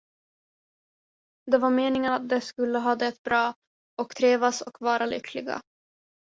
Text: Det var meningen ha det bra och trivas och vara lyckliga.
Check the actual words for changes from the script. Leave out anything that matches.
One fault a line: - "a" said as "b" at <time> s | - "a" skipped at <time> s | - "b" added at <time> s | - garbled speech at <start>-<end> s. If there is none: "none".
- "att de skulle" added at 2.1 s